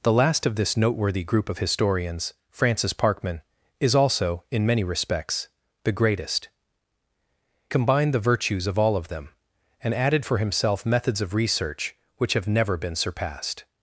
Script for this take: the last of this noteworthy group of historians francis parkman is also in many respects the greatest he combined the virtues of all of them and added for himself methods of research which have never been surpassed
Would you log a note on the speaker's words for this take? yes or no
yes